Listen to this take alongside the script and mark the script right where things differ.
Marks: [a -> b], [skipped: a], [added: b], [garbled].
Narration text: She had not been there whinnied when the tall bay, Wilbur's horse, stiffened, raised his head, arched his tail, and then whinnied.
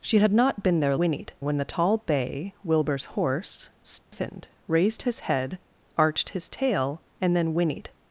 She had not been there whinnied when the tall bay, Wilbur's horse, stiffened, raised his head, arched his tail, and then whinnied.